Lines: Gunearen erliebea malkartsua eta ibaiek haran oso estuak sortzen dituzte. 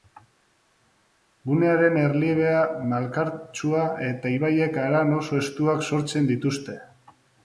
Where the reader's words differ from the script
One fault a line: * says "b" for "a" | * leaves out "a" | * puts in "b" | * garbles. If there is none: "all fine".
all fine